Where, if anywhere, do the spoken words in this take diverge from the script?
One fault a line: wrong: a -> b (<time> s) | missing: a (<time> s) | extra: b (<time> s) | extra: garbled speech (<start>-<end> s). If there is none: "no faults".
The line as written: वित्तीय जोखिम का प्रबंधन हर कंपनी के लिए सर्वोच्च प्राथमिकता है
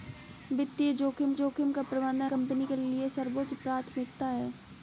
extra: जोखिम (1.3 s)
missing: हर (2.3 s)